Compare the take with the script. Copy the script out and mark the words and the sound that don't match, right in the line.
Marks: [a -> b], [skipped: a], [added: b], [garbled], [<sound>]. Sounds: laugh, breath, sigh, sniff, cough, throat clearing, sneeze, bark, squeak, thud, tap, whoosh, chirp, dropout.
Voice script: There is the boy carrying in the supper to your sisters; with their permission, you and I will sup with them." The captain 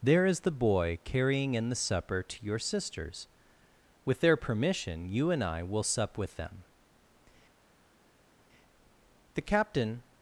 There is the boy carrying in the supper to your sisters; with their permission, you and I will sup with them." The captain